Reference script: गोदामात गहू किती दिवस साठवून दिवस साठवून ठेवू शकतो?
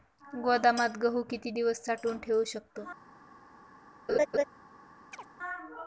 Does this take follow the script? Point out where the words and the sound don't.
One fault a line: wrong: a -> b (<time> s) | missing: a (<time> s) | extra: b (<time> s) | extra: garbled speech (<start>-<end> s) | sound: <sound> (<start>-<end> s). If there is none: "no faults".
missing: दिवस साठवून (2.2 s)
sound: laugh (4.1-4.4 s)
sound: chirp (5.1-5.3 s)